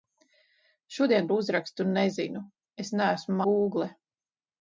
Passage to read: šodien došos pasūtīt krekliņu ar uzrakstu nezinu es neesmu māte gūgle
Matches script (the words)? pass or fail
fail